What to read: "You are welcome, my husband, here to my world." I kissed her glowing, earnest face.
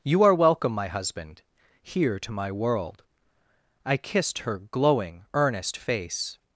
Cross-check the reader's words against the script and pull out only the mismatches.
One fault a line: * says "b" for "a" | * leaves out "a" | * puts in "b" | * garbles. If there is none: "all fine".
all fine